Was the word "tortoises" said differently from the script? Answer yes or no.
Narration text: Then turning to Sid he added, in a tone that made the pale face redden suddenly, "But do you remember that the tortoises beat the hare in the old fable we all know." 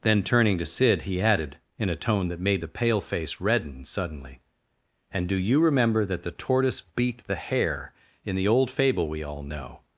yes